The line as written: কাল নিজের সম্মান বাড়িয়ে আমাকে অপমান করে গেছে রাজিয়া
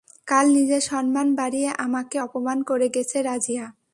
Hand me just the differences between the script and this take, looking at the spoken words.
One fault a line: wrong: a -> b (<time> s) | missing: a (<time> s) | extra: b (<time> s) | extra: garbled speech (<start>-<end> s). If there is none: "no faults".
no faults